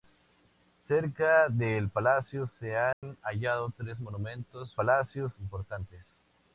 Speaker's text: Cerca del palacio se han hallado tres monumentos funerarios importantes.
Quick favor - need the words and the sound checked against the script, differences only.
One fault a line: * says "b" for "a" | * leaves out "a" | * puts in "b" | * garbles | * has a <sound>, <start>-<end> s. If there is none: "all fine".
* has a dropout, 2.9-3.0 s
* says "palacio" for "funerarios"